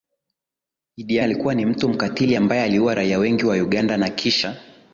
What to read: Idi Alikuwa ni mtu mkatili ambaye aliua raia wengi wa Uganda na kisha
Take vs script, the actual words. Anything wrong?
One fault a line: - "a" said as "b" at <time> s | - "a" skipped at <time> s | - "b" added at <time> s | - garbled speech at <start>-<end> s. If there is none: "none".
none